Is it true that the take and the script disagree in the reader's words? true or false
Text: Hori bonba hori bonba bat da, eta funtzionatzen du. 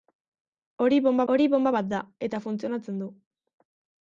false